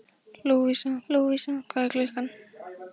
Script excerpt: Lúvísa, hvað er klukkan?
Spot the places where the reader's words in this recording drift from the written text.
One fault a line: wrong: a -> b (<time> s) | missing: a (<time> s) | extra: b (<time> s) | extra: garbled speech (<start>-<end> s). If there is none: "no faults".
extra: lúvísa (1.1 s)